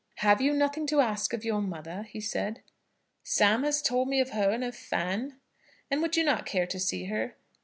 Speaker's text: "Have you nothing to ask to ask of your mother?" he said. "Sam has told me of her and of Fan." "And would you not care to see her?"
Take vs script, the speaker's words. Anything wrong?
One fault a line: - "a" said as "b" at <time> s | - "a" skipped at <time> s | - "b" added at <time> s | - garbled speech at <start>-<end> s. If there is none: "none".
- "to ask" skipped at 1.3 s